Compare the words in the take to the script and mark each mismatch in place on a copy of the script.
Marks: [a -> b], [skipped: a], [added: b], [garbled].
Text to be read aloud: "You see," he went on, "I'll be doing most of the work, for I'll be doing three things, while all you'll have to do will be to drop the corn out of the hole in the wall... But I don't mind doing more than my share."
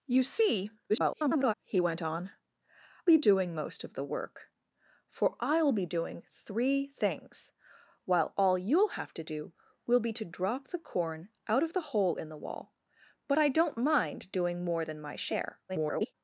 "You see," [garbled] he went on, [skipped: "I'll] be doing most of the work, for I'll be doing three things, while all you'll have to do will be to drop the corn out of the hole in the wall... But I don't mind doing more than my share." [garbled]